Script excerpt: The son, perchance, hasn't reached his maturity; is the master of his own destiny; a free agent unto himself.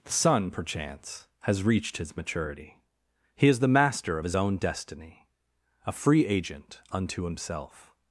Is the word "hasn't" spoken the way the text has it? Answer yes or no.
no